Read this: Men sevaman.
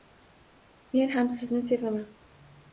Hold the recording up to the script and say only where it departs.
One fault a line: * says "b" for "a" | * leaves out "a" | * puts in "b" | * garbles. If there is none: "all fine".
* puts in "ham sizni"